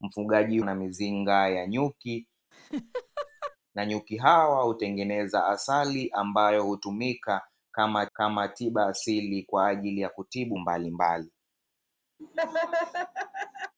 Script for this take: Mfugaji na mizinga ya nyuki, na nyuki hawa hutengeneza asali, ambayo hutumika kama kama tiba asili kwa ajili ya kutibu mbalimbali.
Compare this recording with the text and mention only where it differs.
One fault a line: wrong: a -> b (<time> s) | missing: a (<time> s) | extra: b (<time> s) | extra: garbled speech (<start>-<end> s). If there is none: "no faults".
no faults